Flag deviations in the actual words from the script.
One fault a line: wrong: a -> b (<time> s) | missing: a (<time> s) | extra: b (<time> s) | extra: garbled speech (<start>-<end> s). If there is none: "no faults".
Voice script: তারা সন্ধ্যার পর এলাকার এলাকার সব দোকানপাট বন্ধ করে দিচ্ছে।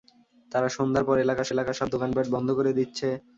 no faults